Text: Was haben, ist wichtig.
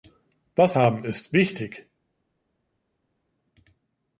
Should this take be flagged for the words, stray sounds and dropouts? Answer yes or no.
no